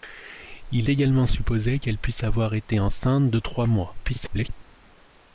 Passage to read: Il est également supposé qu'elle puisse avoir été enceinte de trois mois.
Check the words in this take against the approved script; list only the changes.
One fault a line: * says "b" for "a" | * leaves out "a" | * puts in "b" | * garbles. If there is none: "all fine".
* leaves out "est"
* garbles